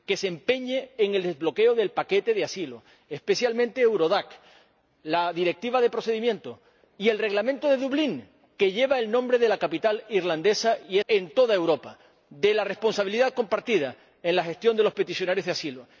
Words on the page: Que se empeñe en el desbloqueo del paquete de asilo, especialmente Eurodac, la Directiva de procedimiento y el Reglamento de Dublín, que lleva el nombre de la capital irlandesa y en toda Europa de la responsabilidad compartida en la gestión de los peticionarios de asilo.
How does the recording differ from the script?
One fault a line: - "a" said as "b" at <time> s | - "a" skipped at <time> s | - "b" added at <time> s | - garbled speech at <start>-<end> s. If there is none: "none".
none